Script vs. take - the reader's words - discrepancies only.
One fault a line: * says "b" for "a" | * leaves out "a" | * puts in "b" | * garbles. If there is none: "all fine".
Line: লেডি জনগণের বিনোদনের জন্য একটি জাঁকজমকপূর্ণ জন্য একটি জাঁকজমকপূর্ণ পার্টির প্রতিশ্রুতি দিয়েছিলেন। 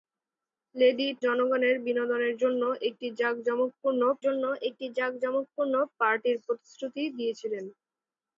all fine